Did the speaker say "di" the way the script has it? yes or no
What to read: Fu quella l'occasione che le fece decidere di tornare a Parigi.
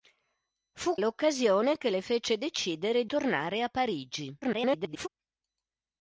no